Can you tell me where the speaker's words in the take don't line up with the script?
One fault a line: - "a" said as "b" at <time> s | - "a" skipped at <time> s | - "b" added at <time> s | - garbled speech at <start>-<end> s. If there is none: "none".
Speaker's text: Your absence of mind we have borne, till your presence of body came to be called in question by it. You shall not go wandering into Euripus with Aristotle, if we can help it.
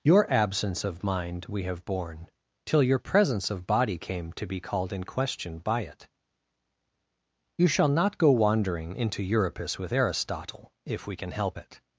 none